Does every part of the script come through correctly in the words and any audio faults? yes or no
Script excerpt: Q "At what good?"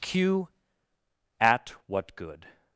yes